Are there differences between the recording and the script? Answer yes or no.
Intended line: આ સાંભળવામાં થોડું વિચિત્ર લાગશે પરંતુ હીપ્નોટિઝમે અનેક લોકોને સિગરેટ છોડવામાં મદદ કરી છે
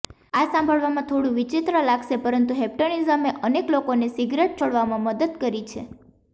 no